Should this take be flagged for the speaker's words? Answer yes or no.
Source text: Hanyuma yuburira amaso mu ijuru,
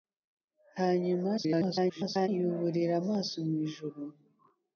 yes